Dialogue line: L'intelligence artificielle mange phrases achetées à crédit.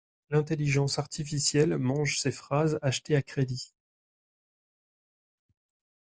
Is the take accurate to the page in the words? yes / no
no